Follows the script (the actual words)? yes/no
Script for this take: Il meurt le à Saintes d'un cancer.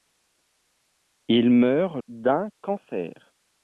no